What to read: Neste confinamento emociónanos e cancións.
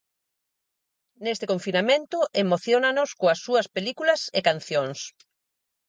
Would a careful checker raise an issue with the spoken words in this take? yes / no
yes